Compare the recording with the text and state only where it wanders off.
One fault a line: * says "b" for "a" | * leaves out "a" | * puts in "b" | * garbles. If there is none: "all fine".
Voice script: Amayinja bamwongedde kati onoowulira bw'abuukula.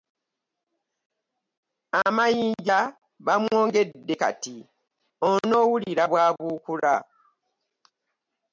all fine